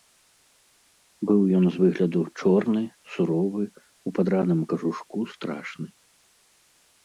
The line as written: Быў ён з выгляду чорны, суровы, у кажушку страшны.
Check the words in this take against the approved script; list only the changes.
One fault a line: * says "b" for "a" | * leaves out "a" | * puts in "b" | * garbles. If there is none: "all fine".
* puts in "падраным"